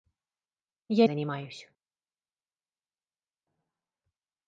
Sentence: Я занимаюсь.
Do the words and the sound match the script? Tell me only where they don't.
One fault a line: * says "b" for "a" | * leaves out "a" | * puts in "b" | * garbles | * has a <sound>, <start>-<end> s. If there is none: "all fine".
all fine